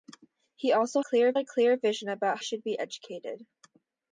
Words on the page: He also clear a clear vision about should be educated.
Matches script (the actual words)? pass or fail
pass